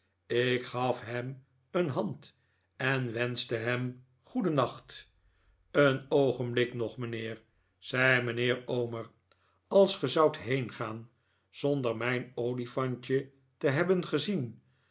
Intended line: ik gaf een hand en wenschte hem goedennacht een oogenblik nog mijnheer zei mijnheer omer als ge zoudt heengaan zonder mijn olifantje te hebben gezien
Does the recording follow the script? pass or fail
fail